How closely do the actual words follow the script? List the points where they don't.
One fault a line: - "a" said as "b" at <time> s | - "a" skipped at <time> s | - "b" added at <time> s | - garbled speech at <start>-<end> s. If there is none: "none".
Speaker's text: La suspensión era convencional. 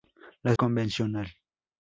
- "suspensión era" skipped at 0.6 s